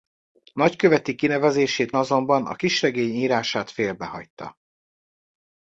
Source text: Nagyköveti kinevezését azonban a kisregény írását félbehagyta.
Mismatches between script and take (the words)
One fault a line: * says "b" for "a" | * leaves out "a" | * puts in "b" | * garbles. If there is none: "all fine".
all fine